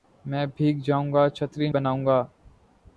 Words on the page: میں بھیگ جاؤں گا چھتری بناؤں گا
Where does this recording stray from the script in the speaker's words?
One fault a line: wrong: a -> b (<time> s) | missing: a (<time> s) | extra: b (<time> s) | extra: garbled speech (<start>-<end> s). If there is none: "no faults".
no faults